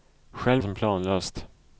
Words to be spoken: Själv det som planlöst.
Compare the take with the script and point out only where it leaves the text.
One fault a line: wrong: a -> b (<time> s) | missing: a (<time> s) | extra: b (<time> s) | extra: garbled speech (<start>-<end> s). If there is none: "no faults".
no faults